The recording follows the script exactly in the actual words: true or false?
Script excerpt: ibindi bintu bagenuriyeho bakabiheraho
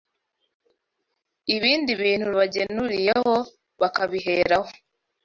true